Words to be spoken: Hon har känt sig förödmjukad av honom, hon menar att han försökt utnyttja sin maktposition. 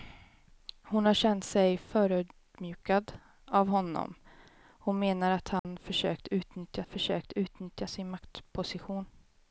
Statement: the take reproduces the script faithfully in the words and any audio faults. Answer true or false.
false